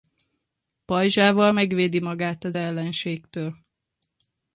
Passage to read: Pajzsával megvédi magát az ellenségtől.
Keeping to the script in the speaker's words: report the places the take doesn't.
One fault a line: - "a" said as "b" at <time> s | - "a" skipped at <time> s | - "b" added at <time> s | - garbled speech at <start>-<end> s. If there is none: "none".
none